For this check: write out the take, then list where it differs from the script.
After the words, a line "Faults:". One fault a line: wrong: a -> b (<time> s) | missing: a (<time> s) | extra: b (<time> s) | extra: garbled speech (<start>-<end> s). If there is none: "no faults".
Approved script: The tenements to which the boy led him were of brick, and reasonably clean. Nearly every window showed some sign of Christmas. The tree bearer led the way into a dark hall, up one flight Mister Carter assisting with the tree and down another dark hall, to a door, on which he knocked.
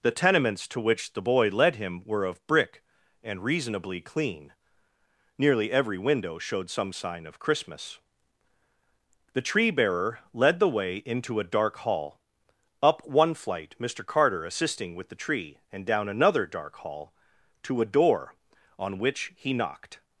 The tenements to which the boy led him were of brick, and reasonably clean. Nearly every window showed some sign of Christmas. The tree bearer led the way into a dark hall, up one flight Mister Carter assisting with the tree and down another dark hall, to a door, on which he knocked.
Faults:
no faults